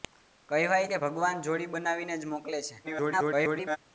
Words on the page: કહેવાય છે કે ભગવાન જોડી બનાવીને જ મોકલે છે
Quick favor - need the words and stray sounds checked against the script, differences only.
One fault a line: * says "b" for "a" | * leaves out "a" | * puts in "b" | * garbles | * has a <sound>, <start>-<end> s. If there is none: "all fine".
* leaves out "છે"
* garbles